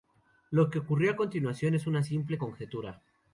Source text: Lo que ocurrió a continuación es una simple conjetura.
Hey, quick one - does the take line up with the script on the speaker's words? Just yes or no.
yes